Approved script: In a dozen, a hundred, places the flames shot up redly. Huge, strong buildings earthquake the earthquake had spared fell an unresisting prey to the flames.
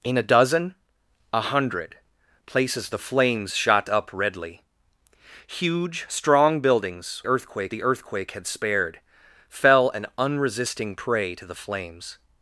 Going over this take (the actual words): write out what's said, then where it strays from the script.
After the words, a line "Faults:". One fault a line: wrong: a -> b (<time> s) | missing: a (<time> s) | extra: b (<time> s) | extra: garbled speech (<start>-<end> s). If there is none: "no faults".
In a dozen, a hundred, places the flames shot up redly. Huge, strong buildings earthquake the earthquake had spared fell an unresisting prey to the flames.
Faults:
no faults